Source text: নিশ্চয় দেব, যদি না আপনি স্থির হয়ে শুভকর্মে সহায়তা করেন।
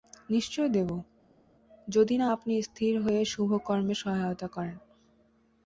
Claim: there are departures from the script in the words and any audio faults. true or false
false